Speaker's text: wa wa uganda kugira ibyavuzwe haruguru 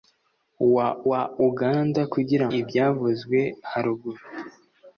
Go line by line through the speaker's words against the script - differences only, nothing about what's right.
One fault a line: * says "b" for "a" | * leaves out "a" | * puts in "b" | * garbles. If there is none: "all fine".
all fine